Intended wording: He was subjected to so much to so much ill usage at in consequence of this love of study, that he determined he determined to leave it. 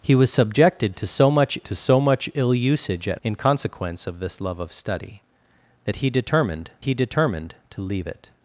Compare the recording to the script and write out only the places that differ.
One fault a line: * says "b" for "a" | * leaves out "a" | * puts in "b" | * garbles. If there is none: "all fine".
all fine